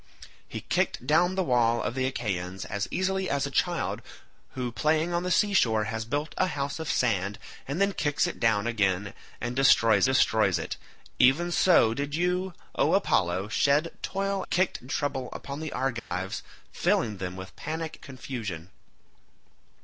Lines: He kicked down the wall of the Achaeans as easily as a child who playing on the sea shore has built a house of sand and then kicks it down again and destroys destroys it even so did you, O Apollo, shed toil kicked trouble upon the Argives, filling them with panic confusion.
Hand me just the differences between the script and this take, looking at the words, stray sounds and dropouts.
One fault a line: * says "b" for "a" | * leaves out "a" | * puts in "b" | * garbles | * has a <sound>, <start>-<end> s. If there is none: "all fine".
* has a dropout, 16.0-16.1 s